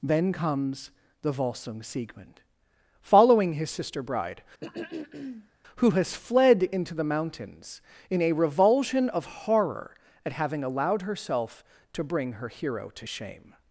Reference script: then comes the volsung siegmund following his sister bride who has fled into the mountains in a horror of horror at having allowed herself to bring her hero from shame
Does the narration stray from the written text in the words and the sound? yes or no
yes